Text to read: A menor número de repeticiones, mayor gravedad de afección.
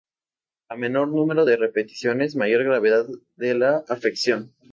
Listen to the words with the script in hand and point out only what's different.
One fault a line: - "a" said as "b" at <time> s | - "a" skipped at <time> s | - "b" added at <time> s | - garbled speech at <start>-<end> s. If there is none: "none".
- "la" added at 3.5 s